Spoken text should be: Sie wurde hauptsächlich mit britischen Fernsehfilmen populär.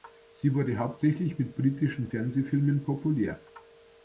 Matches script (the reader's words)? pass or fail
pass